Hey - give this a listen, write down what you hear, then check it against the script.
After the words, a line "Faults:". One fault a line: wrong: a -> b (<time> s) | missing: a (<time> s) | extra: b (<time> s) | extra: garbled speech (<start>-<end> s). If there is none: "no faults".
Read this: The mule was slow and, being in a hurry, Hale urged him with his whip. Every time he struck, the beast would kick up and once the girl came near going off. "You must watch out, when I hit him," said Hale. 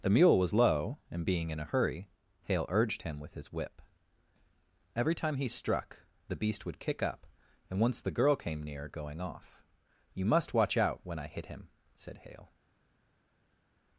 The mule was low and, being in a hurry, Hale urged him with his whip. Every time he struck, the beast would kick up and once the girl came near going off. "You must watch out, when I hit him," said Hale.
Faults:
wrong: slow -> low (0.5 s)